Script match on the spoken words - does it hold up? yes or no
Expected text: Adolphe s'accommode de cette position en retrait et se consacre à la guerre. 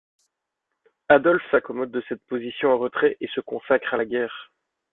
yes